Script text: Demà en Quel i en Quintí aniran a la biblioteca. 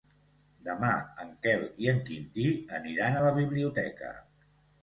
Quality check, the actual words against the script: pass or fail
pass